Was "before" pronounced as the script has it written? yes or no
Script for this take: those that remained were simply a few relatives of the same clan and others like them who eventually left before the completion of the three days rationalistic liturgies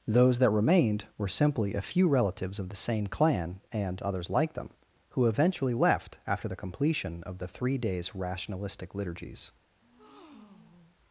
no